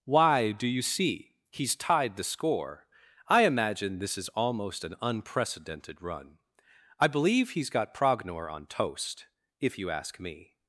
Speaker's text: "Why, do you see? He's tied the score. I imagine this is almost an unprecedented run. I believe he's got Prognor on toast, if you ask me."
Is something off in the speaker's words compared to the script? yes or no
no